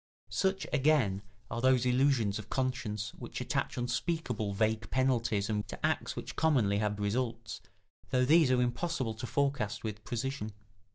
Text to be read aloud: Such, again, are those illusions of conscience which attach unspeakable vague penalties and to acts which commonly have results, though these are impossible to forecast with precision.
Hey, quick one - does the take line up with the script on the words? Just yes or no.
yes